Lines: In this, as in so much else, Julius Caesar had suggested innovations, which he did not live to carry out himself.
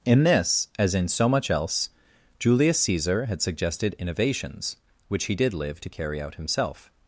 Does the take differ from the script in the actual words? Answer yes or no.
yes